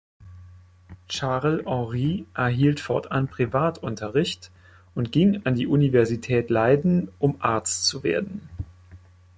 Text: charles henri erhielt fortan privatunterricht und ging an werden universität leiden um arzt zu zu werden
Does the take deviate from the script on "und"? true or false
false